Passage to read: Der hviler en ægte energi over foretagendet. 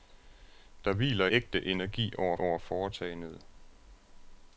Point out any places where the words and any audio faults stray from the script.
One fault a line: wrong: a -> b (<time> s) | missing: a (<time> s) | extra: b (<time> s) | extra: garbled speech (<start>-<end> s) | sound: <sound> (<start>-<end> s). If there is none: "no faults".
missing: en (1.3 s)
extra: over (2.4 s)